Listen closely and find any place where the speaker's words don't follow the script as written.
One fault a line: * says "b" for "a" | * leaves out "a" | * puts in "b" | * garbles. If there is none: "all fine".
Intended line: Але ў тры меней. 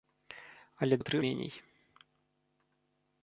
all fine